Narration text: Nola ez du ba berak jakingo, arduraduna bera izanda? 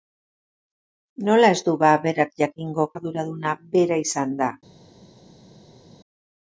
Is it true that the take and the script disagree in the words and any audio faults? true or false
false